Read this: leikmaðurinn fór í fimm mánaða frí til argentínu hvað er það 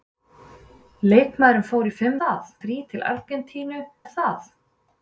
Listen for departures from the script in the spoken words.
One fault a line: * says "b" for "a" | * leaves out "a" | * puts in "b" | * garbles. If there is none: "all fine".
* says "það" for "mánaða"
* leaves out "hvað"